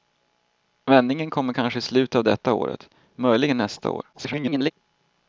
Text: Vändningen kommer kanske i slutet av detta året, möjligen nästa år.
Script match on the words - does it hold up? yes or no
no